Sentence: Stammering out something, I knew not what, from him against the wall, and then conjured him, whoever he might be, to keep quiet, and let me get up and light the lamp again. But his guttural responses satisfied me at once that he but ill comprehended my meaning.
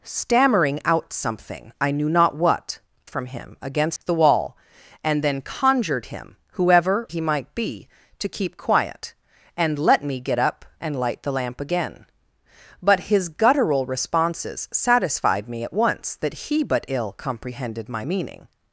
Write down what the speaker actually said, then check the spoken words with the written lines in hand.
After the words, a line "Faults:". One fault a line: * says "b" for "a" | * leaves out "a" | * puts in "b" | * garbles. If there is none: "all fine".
Stammering out something, I knew not what, from him against the wall, and then conjured him, whoever he might be, to keep quiet, and let me get up and light the lamp again. But his guttural responses satisfied me at once that he but ill comprehended my meaning.
Faults:
all fine